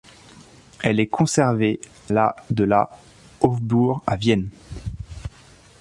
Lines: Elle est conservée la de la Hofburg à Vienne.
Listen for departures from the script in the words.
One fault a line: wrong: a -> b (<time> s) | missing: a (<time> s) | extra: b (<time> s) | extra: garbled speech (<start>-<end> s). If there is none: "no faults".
no faults